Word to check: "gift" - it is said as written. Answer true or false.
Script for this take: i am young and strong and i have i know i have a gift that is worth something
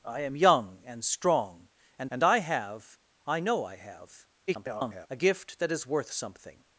true